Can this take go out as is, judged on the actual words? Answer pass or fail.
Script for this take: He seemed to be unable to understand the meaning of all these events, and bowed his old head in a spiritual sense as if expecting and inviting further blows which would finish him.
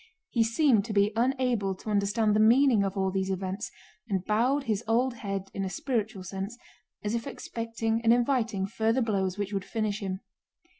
pass